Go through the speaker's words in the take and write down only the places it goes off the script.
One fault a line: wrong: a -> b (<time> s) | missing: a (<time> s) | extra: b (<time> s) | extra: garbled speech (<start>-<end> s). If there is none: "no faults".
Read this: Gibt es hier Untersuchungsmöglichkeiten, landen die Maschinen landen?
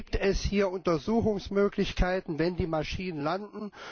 wrong: landen -> wenn (2.4 s)